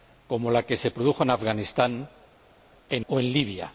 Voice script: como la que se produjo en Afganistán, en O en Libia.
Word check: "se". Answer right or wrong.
right